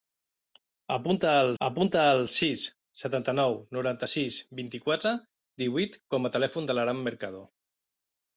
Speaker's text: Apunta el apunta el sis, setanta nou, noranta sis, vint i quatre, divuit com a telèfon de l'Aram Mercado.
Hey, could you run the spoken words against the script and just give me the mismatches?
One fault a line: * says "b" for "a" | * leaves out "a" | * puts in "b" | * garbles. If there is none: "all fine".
all fine